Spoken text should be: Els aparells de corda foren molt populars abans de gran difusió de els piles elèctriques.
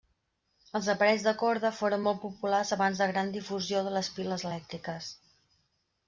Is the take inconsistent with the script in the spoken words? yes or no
yes